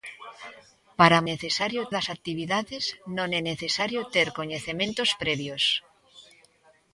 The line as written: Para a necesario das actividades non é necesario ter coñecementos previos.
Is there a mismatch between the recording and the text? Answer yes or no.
no